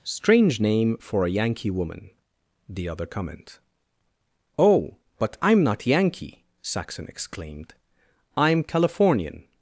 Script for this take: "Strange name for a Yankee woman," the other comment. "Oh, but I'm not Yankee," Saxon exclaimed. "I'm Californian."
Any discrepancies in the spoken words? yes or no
no